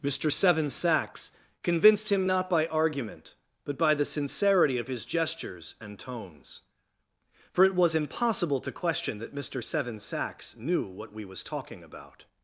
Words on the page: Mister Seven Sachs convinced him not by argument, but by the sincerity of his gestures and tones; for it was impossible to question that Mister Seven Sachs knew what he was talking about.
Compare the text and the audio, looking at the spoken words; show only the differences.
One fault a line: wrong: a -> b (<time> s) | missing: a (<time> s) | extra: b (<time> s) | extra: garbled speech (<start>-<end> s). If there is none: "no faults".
wrong: he -> we (11.1 s)